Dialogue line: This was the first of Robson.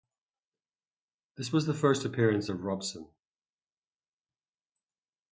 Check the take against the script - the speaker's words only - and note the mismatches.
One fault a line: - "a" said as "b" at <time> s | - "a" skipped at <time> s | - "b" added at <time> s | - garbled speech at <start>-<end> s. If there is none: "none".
- "appearance" added at 2.0 s